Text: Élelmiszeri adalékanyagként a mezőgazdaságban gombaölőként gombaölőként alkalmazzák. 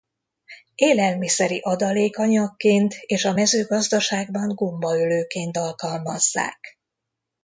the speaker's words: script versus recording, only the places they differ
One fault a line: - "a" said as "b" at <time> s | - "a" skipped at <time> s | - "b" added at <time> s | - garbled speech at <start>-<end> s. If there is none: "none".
- "és" added at 3.0 s
- "gombaölőként" skipped at 5.6 s